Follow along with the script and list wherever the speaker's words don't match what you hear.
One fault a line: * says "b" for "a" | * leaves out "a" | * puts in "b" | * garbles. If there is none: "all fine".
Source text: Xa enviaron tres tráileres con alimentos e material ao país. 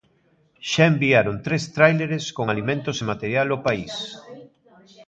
all fine